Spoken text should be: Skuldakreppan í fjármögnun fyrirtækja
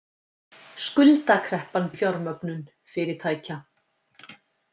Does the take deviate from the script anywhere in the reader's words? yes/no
no